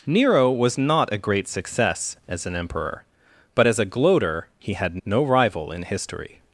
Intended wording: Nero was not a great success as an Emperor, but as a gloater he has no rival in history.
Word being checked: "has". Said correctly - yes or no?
no